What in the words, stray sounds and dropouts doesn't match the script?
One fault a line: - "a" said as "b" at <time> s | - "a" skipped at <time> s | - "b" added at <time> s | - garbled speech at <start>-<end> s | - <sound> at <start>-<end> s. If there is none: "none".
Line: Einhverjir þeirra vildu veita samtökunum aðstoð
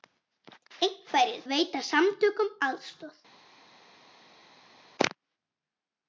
- "þeirra vildu" skipped at 1.4 s